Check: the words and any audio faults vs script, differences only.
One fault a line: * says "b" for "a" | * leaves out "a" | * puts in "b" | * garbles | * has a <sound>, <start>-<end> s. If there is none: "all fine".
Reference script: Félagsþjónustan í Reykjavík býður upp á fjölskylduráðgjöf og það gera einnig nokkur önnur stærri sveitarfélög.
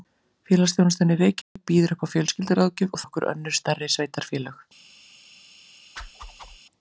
* has a dropout, 1.4-1.6 s
* leaves out "það gera einnig"
* has a whoosh, 6.0-6.6 s